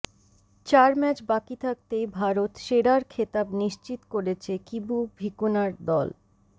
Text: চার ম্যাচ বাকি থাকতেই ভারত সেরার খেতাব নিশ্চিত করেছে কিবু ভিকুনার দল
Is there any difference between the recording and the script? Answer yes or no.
no